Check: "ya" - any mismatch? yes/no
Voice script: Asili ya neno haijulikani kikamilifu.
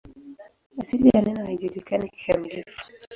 no